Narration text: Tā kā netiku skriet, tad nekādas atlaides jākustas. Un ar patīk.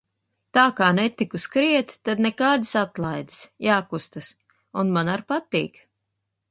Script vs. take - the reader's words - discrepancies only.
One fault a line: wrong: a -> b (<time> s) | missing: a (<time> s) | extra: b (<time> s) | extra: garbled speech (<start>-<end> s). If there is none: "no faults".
extra: man (5.0 s)